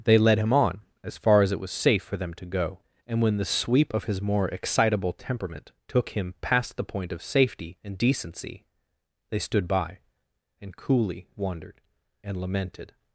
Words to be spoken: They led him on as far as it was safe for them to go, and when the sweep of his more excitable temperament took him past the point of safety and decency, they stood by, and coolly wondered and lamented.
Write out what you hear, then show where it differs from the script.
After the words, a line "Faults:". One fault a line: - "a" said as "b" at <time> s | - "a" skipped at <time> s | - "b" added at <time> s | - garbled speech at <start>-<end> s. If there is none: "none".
They led him on as far as it was safe for them to go, and when the sweep of his more excitable temperament took him past the point of safety and decency, they stood by, and coolly wondered and lamented.
Faults:
none